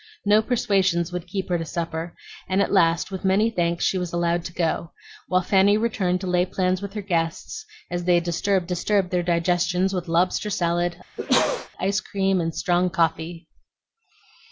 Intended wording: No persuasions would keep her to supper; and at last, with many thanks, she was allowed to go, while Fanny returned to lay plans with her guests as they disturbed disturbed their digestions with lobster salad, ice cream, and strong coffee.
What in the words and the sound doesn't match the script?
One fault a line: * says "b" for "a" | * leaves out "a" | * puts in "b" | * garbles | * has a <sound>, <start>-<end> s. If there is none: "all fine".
* has a sneeze, 11.2-11.7 s